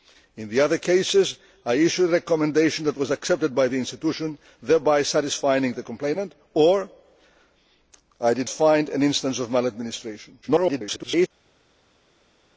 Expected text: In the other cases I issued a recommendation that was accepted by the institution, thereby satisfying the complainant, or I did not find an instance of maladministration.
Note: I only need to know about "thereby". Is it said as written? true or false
true